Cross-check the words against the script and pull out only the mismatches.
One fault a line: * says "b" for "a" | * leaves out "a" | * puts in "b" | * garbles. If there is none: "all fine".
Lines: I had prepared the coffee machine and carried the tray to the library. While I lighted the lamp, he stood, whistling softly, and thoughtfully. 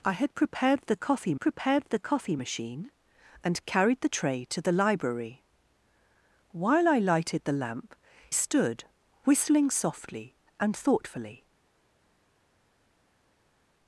* puts in "prepared the coffee"
* leaves out "he"